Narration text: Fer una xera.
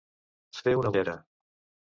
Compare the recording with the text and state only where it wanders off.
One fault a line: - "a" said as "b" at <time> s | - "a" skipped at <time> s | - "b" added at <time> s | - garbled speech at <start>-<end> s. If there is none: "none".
none